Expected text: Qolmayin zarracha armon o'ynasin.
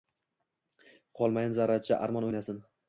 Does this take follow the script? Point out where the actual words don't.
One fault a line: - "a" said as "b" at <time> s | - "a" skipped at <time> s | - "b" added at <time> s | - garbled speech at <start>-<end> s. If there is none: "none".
none